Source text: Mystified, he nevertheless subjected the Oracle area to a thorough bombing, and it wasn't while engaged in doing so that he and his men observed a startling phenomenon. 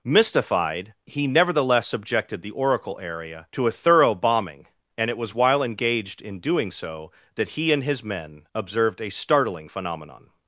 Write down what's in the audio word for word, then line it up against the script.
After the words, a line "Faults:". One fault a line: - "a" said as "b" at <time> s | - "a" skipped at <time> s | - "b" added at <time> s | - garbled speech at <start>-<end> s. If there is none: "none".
Mystified, he nevertheless subjected the Oracle area to a thorough bombing, and it was while engaged in doing so that he and his men observed a startling phenomenon.
Faults:
- "wasn't" said as "was" at 5.2 s